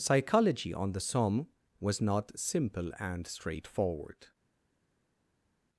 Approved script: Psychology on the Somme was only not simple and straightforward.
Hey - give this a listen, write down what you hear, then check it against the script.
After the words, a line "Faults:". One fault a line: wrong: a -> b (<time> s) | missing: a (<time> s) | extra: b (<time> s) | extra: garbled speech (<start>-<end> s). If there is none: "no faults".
Psychology on the Somme was not simple and straightforward.
Faults:
missing: only (2.0 s)